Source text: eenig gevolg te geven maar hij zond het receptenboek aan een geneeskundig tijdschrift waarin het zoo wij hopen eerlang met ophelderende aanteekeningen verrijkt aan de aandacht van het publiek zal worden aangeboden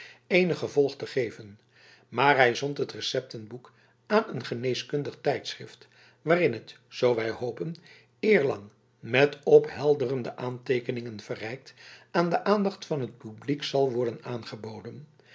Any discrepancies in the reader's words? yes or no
no